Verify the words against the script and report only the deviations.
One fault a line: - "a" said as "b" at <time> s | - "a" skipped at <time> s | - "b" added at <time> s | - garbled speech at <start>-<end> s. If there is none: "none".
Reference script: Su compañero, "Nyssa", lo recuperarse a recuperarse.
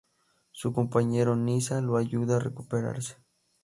- "recuperarse" said as "ayuda" at 2.0 s